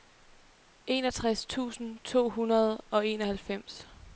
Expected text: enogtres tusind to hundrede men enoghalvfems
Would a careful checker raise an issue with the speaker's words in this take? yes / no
yes